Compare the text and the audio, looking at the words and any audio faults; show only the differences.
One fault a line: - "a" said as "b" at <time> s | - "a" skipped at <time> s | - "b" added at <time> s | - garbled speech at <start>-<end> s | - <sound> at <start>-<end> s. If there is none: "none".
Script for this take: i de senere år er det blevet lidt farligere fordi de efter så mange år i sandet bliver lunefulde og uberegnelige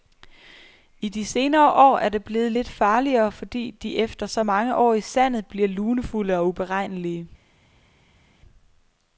none